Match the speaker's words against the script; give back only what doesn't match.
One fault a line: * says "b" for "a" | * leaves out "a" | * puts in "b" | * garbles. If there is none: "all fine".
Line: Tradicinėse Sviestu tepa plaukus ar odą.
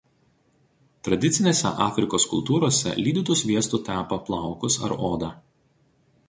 * puts in "Afrikos kultūrose lydytu"